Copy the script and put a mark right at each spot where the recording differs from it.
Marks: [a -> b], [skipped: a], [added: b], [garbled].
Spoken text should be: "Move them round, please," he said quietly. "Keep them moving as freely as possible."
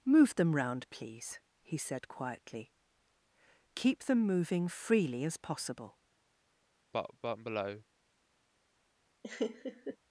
"Move them round, please," he said quietly. "Keep them moving [skipped: as] freely as possible."